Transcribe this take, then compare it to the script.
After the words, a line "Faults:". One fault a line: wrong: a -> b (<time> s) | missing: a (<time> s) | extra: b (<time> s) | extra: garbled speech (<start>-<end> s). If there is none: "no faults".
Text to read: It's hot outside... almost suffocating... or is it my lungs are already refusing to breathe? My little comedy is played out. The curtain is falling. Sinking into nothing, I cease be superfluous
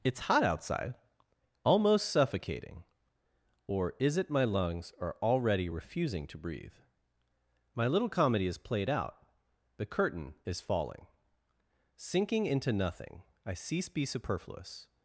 It's hot outside... almost suffocating... or is it my lungs are already refusing to breathe? My little comedy is played out. The curtain is falling. Sinking into nothing, I cease be superfluous
Faults:
no faults